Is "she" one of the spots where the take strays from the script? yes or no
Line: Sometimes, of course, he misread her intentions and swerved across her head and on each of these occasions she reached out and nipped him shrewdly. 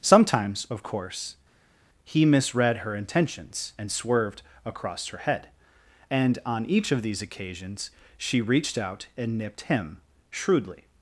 no